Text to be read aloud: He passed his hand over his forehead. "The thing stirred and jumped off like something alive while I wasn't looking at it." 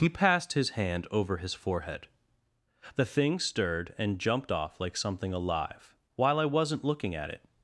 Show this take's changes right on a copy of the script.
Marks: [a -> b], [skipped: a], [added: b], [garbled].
He passed his hand over his forehead. "The thing stirred and jumped off like something alive while I wasn't looking at it."